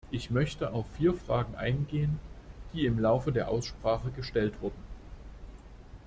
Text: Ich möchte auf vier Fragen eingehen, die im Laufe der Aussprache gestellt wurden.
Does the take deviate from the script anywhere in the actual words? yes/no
no